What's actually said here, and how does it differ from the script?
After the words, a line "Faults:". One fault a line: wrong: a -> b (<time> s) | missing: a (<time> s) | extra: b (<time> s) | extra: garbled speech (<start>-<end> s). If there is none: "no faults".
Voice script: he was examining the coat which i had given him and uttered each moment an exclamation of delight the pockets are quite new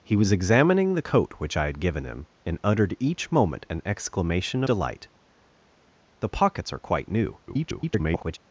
he was examining the coat which i had given him and uttered each moment an exclamation delight the pockets are quite new [garbled]
Faults:
missing: of (4.6 s)
extra: garbled speech (7.5-8.4 s)